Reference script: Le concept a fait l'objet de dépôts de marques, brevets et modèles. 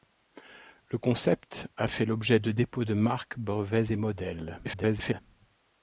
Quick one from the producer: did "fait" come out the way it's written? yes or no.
yes